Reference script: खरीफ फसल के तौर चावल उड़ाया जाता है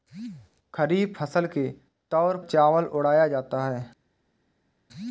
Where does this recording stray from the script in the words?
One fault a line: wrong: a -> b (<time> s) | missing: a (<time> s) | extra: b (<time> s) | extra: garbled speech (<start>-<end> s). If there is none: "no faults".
no faults